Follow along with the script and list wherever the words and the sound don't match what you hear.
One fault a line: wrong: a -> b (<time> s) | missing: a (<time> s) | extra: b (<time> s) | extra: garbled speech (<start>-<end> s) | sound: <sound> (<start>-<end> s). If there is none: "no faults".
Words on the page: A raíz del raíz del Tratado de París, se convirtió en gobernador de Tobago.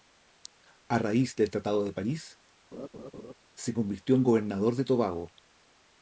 missing: raíz del (1.5 s)
sound: laugh (2.7-3.3 s)